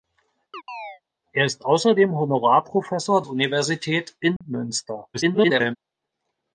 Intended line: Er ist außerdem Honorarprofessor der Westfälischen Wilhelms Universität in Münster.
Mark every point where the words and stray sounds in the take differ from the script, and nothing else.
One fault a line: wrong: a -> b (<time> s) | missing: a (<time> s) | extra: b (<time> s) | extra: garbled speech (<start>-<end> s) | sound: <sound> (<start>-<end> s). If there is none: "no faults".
sound: chirp (0.5-1.0 s)
missing: der Westfälischen Wilhelms (3.2 s)
sound: dropout (4.4-4.4 s)
extra: garbled speech (5.1-5.8 s)